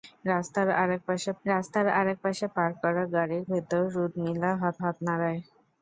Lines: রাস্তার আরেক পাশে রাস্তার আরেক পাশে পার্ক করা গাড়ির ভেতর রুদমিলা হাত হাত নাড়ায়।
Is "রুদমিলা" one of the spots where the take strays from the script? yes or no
no